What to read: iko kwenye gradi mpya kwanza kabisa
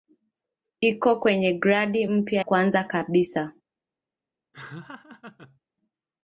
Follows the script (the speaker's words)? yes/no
yes